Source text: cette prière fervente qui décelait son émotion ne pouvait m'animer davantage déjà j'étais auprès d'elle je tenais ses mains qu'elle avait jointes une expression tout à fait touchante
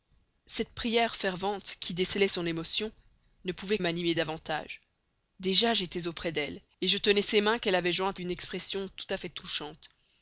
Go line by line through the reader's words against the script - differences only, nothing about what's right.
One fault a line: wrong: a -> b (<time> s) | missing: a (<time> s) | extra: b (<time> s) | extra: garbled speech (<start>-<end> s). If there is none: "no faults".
no faults